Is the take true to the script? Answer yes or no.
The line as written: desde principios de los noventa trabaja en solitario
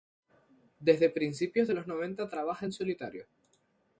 yes